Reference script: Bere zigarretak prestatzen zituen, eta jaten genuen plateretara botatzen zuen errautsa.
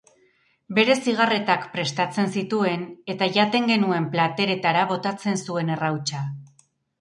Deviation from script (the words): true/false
false